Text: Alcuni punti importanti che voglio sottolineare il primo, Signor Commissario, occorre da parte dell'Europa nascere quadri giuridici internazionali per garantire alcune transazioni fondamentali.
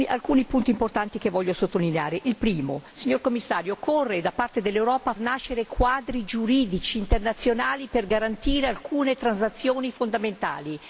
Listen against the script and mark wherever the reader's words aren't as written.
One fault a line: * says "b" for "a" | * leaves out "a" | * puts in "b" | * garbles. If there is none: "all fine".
all fine